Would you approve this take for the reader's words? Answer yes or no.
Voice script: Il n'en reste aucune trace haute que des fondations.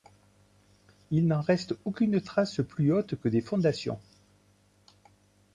no